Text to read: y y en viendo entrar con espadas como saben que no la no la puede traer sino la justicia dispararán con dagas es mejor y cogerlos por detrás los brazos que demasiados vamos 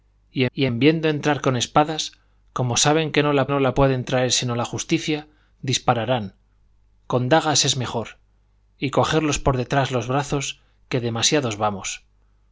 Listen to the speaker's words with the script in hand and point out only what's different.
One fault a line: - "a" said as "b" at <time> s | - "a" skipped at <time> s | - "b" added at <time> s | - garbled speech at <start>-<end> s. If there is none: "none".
none